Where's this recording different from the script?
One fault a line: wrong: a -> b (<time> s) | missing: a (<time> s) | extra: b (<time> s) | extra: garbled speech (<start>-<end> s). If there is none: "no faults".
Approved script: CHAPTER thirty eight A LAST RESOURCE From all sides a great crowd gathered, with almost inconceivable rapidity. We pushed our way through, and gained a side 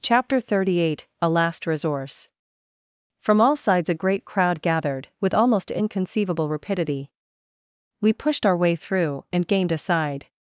no faults